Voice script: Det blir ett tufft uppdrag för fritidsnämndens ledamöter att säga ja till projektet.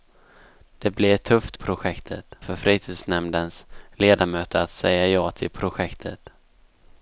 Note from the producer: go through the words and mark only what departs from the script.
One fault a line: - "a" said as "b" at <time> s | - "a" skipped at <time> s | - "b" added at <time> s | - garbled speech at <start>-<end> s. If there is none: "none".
- "uppdrag" said as "projektet" at 1.5 s